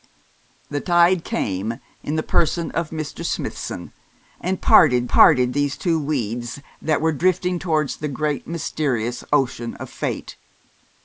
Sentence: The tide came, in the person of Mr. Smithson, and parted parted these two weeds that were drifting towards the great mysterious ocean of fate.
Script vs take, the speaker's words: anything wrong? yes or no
no